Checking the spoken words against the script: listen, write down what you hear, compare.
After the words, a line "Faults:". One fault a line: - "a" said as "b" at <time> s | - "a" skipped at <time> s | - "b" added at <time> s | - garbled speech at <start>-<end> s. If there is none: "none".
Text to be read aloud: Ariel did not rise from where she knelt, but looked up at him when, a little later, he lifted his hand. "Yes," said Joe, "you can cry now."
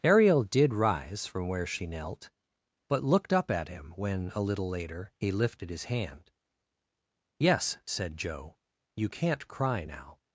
Ariel did rise from where she knelt, but looked up at him when, a little later, he lifted his hand. "Yes," said Joe, "you can't cry now."
Faults:
- "not" skipped at 0.7 s
- "can" said as "can't" at 9.1 s